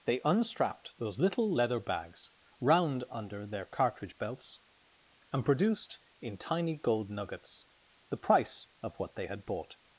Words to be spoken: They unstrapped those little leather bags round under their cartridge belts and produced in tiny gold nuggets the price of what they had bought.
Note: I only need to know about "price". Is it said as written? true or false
true